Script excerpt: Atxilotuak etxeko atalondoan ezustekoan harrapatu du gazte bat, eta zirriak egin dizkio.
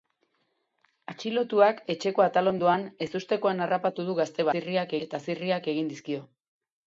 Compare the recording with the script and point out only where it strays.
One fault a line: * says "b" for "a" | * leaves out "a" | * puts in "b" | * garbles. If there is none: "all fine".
* says "zirriak" for "bat"